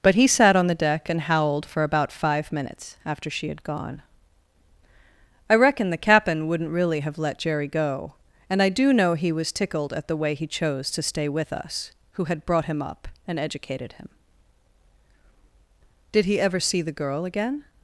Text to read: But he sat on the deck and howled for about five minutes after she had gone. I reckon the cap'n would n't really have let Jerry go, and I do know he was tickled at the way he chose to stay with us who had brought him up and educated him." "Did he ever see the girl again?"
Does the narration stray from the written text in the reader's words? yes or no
no